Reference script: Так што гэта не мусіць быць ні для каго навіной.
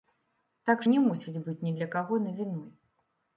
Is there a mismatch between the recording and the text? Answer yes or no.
yes